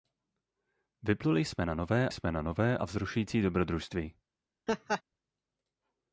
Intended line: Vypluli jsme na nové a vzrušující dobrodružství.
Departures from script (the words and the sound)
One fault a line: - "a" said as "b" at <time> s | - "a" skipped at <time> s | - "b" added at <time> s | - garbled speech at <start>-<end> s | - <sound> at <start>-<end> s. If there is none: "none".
- "jsme na nové" added at 2.1 s
- laugh at 4.7-5.0 s